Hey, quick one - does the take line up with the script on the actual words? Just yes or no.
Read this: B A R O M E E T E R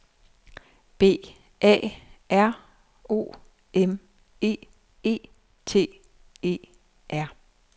yes